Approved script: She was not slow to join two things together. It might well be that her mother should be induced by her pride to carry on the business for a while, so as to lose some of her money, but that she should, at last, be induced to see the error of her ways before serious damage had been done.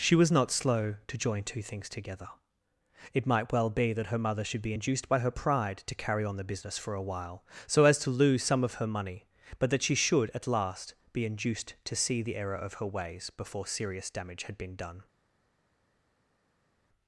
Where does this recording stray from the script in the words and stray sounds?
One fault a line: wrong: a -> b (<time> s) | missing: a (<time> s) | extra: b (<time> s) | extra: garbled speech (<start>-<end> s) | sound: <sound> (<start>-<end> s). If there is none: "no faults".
no faults